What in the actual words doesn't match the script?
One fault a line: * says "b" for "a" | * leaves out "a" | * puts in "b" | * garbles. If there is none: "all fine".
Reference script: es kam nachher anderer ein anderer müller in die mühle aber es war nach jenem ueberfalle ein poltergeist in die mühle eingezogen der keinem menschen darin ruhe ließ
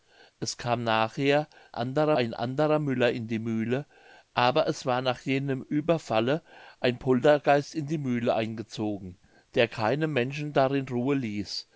all fine